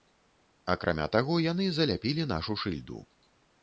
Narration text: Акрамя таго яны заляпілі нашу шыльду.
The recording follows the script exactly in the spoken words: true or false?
true